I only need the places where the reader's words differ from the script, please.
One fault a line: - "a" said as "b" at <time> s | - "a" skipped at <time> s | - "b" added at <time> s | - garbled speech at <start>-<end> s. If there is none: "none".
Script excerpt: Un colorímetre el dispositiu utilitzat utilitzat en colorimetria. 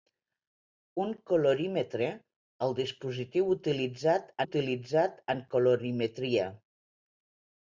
none